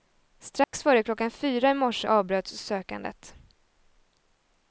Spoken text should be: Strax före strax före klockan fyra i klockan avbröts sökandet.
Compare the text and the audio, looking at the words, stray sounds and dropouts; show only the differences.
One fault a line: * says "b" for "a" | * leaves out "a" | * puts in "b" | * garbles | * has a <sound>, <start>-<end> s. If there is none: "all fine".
* has a dropout, 0.6-0.7 s
* leaves out "strax före"
* says "morse" for "klockan"